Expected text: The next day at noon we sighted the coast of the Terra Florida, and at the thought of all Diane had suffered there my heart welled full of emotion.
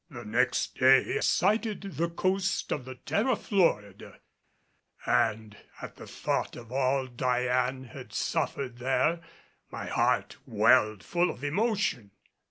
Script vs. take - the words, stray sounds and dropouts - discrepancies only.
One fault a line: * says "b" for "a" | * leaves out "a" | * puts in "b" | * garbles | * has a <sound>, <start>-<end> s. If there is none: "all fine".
* leaves out "at noon we"